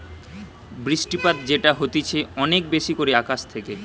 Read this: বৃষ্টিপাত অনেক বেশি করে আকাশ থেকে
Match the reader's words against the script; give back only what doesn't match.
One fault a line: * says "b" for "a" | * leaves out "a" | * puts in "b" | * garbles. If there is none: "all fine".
* puts in "যেটা হতিছে"